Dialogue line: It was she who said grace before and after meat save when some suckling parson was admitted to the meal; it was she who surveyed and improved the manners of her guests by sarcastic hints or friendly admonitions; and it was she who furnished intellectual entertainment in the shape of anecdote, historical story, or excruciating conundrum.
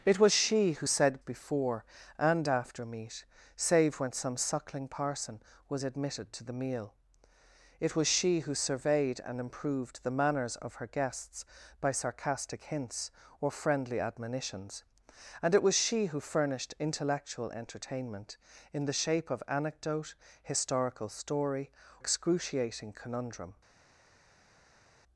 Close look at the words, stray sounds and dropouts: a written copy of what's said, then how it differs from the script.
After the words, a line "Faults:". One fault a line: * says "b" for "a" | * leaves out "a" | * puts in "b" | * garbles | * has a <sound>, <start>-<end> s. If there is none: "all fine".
It was she who said before and after meat save when some suckling parson was admitted to the meal; it was she who surveyed and improved the manners of her guests by sarcastic hints or friendly admonitions; and it was she who furnished intellectual entertainment in the shape of anecdote, historical story, excruciating conundrum.
Faults:
* leaves out "grace"
* leaves out "or"